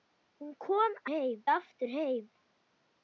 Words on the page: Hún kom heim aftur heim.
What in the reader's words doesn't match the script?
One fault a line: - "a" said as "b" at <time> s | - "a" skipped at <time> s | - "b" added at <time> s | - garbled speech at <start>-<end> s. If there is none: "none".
none